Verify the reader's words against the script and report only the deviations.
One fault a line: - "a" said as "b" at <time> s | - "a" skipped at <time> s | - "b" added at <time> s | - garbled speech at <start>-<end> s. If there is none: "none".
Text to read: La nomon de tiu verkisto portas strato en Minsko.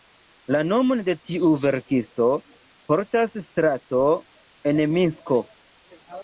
none